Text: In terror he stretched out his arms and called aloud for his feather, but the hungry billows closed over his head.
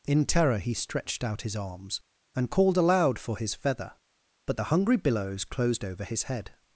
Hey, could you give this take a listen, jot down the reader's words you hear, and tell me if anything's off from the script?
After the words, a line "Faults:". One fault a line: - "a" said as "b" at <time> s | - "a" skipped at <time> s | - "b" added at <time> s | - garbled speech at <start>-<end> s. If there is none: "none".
In terror he stretched out his arms and called aloud for his feather, but the hungry billows closed over his head.
Faults:
none